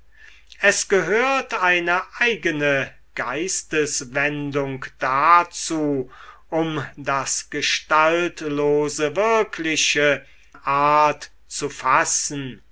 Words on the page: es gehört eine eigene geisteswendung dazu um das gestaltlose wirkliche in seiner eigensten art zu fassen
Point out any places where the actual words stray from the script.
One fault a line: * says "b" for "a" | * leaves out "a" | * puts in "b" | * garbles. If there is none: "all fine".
* leaves out "in seiner eigensten"